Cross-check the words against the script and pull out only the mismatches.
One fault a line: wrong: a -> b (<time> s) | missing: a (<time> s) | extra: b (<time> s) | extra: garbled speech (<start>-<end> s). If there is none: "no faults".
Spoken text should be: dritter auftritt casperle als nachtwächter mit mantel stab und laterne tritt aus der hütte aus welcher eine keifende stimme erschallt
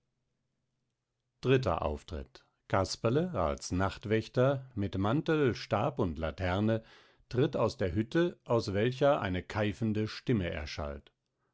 no faults